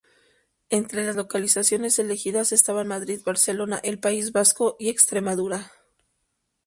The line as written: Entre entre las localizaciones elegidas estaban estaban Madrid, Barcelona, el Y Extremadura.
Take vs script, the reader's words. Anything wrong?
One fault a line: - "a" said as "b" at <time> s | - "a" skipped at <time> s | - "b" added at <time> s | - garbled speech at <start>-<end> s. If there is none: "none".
- "entre" skipped at 1.1 s
- "estaban" skipped at 2.9 s
- "País Vasco" added at 4.0 s